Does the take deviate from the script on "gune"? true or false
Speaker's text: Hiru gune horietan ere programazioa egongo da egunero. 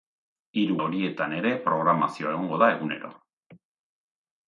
true